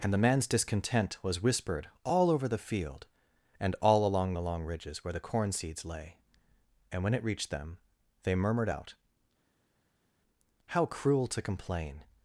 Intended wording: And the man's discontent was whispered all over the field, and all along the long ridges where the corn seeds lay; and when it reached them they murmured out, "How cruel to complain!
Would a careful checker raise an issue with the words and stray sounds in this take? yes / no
no